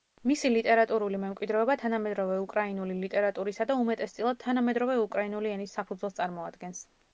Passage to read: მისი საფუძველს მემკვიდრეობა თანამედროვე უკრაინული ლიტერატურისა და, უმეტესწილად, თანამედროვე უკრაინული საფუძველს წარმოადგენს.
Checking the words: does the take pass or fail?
fail